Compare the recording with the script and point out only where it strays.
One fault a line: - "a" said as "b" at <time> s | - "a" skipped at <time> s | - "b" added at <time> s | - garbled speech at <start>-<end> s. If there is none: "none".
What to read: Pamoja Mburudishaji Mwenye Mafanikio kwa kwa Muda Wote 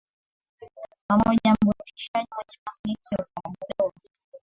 none